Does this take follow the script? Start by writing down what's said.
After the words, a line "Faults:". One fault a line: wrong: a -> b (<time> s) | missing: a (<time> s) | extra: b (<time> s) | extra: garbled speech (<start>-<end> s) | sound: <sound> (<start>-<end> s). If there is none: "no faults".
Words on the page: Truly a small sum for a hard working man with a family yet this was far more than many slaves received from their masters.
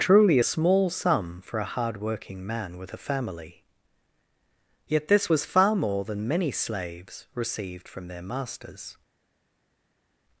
Truly a small sum for a hard working man with a family yet this was far more than many slaves received from their masters.
Faults:
no faults